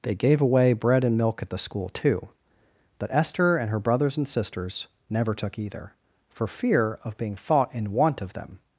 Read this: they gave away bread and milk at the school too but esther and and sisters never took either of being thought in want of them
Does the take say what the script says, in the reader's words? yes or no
no